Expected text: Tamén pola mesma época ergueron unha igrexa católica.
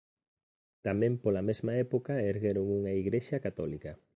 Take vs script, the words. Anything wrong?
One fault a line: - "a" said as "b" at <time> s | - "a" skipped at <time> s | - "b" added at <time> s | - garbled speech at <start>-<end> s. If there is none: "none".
none